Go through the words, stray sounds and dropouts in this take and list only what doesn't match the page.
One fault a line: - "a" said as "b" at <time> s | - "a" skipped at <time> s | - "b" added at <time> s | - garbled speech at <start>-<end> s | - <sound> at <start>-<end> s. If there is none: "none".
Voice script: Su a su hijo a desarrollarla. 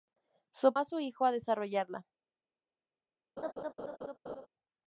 - laugh at 3.4-4.5 s